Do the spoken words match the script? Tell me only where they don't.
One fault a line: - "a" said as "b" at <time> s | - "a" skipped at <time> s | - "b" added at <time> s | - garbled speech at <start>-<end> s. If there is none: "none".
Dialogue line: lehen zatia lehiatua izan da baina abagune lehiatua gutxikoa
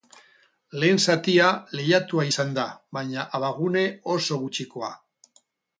- "lehiatua" said as "oso" at 4.2 s